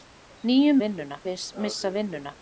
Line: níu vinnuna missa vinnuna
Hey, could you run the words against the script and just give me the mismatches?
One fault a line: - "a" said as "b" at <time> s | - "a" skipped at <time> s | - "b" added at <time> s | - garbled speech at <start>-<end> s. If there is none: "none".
none